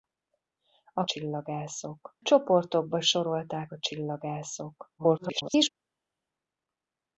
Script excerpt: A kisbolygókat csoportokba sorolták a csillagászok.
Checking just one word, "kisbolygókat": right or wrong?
wrong